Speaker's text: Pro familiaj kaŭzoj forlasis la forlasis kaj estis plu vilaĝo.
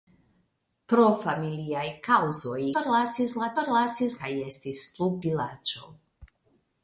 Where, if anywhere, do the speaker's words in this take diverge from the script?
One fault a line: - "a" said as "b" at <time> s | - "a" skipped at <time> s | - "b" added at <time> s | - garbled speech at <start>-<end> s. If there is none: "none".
none